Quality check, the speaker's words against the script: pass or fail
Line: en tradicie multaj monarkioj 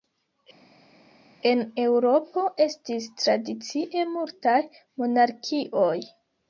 fail